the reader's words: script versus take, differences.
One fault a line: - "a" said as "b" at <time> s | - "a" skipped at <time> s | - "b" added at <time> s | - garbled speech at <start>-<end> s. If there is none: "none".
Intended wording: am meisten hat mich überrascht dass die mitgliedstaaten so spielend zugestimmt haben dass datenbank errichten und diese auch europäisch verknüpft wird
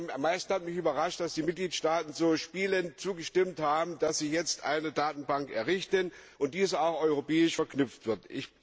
- "sie jetzt eine" added at 4.2 s